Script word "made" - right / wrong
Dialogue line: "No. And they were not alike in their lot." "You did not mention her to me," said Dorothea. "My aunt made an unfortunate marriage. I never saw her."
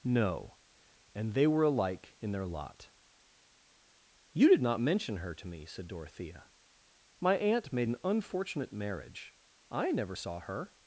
right